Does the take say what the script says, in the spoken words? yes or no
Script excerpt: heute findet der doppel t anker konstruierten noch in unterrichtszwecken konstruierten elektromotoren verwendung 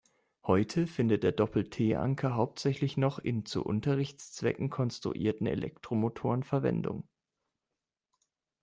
no